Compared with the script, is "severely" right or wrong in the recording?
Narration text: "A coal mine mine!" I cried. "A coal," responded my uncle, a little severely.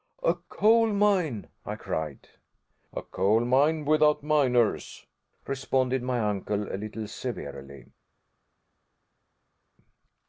right